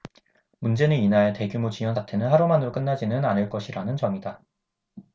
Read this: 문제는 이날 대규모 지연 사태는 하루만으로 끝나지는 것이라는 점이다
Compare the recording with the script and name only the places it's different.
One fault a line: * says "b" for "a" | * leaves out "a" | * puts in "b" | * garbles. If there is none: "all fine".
* puts in "않을"